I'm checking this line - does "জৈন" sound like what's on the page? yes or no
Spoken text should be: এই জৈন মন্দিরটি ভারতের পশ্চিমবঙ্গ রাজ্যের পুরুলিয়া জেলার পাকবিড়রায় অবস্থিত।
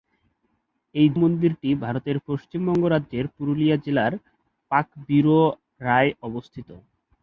no